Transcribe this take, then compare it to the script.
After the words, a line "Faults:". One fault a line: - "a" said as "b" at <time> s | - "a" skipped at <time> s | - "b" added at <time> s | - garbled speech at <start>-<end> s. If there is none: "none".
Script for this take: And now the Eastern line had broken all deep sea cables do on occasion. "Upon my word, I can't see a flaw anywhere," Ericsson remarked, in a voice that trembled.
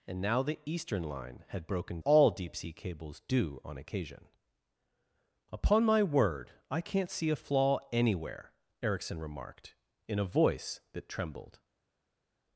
And now the Eastern line had broken all deep sea cables do on occasion. "Upon my word, I can't see a flaw anywhere," Ericsson remarked, in a voice that trembled.
Faults:
none